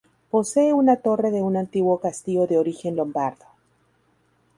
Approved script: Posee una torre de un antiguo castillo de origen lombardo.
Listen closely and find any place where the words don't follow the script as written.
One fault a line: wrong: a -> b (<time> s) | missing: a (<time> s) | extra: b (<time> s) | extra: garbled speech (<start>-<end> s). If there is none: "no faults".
no faults